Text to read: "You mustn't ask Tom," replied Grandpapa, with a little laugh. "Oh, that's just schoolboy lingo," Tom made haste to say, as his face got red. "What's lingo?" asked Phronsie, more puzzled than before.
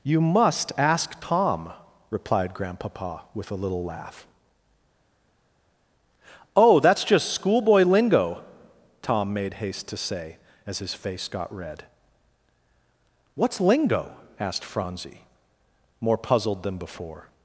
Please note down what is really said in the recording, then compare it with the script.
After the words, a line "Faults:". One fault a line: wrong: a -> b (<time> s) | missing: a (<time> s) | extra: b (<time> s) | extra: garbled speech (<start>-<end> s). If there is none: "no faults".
"You must ask Tom," replied Grandpapa, with a little laugh. "Oh, that's just schoolboy lingo," Tom made haste to say, as his face got red. "What's lingo?" asked Phronsie, more puzzled than before.
Faults:
wrong: mustn't -> must (0.2 s)